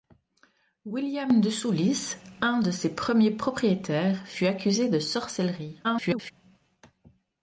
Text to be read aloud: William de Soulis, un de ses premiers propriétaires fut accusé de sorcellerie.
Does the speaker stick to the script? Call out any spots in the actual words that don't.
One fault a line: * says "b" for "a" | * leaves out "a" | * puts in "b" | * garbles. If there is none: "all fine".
* garbles